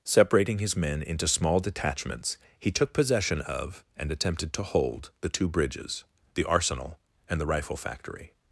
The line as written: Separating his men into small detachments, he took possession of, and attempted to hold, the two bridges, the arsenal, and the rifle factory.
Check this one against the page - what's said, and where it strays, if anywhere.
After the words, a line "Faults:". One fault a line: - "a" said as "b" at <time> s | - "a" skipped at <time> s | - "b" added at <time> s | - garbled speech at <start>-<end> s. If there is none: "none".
Separating his men into small detachments, he took possession of, and attempted to hold, the two bridges, the arsenal, and the rifle factory.
Faults:
none